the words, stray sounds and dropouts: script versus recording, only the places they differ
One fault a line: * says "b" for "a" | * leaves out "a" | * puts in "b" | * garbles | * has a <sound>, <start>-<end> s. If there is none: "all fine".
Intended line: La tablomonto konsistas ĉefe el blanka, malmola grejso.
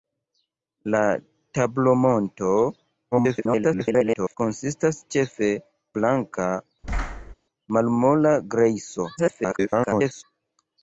* garbles
* leaves out "el"
* has a thud, 6.8-7.3 s
* garbles